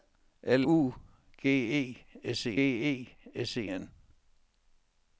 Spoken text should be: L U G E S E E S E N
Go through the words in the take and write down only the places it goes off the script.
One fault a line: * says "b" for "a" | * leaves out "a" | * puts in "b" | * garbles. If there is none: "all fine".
all fine